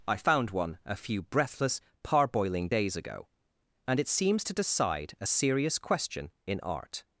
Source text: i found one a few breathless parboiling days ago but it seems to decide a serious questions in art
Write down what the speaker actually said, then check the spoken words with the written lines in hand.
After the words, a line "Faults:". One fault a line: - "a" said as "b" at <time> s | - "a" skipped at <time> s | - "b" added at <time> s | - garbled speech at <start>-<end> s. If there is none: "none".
i found one a few breathless parboiling days ago and it seems to decide a serious question in art
Faults:
- "but" said as "and" at 3.9 s
- "questions" said as "question" at 5.8 s